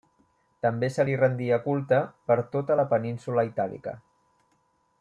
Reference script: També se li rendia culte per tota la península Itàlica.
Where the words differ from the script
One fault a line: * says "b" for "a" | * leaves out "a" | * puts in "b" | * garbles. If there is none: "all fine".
all fine